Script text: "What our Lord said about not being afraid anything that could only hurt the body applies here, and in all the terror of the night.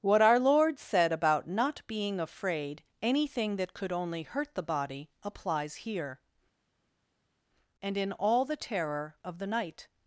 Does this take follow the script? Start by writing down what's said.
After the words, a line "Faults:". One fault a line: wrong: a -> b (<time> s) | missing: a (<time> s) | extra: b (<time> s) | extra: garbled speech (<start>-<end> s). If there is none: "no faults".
"What our Lord said about not being afraid anything that could only hurt the body applies here, and in all the terror of the night.
Faults:
no faults